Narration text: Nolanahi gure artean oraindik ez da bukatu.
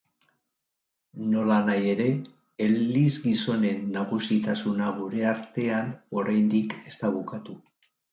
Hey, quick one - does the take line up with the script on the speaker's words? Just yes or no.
no